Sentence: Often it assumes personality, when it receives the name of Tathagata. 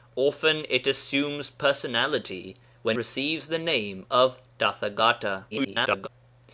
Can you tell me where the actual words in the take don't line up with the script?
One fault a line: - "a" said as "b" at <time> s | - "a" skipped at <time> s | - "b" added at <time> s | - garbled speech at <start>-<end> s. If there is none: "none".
- "it" skipped at 3.0 s
- garbled speech at 5.5-6.1 s